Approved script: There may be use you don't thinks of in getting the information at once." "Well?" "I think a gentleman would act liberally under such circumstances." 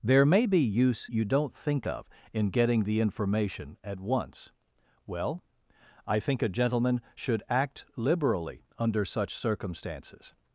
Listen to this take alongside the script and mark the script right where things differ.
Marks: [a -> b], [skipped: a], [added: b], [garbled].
There may be use you don't [thinks -> think] of in getting the information at once." "Well?" "I think a gentleman [would -> should] act liberally under such circumstances."